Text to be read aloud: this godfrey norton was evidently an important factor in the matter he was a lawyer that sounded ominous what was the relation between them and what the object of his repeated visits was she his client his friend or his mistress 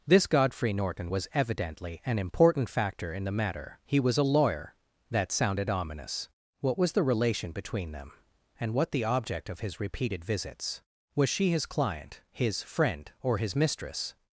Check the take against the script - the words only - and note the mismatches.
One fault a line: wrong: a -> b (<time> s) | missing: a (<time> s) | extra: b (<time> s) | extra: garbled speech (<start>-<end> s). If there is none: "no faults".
no faults